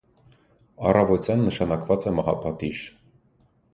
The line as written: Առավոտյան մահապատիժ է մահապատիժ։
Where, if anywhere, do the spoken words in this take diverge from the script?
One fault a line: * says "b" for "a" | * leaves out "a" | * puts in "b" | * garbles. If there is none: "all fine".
* says "նշանակված" for "մահապատիժ"